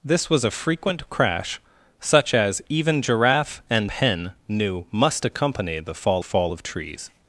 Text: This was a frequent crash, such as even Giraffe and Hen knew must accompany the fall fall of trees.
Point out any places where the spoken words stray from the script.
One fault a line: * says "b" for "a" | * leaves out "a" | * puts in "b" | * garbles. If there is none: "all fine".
all fine